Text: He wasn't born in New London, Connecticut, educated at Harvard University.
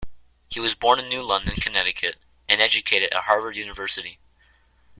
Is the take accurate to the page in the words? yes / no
no